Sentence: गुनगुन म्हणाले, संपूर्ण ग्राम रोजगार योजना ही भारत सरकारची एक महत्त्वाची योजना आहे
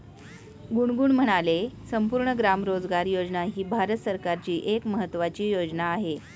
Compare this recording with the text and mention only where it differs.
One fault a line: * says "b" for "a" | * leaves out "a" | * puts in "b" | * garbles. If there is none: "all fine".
all fine